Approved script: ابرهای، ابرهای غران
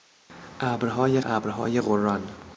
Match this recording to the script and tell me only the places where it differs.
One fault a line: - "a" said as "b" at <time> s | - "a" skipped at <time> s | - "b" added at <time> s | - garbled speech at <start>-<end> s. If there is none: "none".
none